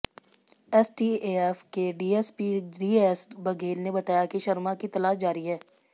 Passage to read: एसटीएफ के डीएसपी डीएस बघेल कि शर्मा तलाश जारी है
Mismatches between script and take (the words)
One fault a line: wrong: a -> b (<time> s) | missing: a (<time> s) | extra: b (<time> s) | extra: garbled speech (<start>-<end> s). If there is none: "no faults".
extra: ने बताया (3.8 s)
extra: की (4.8 s)